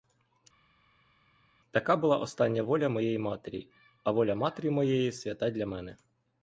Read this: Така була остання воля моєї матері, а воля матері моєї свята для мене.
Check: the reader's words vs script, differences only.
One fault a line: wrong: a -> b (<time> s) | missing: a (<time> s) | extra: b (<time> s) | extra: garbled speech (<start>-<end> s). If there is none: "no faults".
no faults